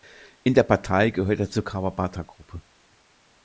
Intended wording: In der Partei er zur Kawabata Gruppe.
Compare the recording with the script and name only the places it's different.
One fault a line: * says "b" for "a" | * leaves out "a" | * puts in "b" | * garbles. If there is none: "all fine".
* puts in "gehört"